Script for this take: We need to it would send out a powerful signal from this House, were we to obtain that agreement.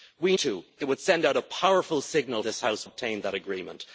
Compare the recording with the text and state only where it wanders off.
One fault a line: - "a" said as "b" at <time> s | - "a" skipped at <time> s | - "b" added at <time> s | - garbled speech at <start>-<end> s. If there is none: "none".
- "need" skipped at 0.3 s
- "from" skipped at 2.4 s
- "were we to" skipped at 2.9 s